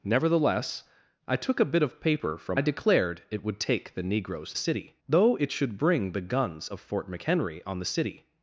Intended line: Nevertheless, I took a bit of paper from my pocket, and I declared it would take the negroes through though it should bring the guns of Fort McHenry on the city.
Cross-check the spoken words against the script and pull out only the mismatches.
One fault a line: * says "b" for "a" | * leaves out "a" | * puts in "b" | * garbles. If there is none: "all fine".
* leaves out "my pocket and"
* says "city" for "through"